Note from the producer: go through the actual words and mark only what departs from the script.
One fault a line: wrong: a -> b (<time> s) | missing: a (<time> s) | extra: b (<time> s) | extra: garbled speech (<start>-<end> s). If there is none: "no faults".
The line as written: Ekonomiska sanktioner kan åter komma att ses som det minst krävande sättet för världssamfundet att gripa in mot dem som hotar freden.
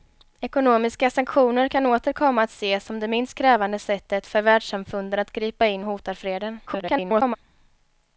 missing: mot dem som (5.8 s)
extra: garbled speech (6.7-7.4 s)